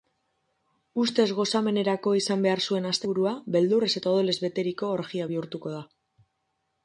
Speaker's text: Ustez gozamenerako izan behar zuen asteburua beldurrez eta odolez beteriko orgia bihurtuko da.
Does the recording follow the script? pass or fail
pass